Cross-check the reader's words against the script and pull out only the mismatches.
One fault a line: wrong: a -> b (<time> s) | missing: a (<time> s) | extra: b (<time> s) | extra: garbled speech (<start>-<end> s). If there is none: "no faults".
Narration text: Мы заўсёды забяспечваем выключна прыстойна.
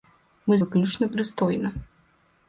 missing: заўсёды забяспечваем (0.6 s)